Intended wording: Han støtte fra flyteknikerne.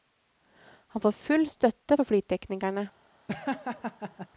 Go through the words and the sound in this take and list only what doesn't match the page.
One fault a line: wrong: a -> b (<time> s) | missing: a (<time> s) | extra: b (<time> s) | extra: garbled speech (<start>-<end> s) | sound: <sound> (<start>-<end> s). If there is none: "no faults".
extra: får full (1.0 s)
sound: laugh (3.3-4.3 s)